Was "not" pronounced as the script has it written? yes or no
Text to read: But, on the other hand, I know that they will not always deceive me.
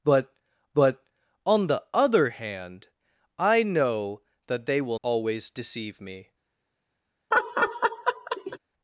no